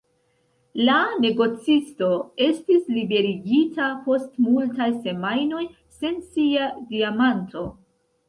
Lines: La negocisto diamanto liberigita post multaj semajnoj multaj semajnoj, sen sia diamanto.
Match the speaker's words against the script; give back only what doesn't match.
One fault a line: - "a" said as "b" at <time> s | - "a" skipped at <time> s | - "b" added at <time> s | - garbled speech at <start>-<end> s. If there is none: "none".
- "diamanto" said as "estis" at 2.5 s
- "multaj semajnoj" skipped at 5.6 s